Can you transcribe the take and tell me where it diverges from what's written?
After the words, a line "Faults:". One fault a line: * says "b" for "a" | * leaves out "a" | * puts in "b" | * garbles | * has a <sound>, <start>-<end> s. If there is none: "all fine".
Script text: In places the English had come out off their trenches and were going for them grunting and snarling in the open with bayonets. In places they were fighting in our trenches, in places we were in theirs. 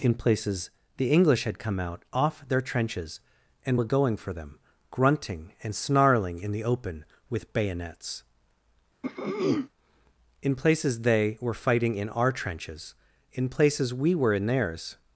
In places the English had come out off their trenches and were going for them grunting and snarling in the open with bayonets. In places they were fighting in our trenches, in places we were in theirs.
Faults:
* has a throat clearing, 9.0-9.7 s